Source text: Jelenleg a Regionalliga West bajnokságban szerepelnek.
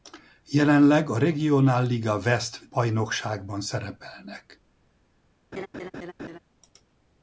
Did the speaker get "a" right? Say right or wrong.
right